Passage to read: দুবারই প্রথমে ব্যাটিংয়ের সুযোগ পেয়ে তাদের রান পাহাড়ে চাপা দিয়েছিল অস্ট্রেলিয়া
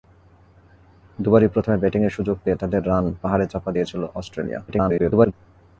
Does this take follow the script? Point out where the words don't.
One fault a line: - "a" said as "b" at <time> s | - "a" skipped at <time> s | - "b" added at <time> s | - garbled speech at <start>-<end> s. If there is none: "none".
- garbled speech at 4.7-5.3 s